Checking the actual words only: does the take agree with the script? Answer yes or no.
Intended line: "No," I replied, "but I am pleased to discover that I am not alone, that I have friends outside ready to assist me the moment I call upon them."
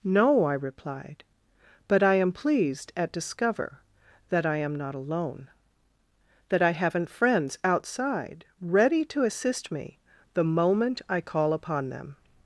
no